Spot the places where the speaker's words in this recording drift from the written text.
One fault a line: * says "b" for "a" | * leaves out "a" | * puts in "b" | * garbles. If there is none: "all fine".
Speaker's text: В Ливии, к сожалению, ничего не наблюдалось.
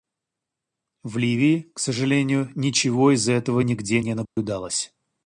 * puts in "из этого нигде"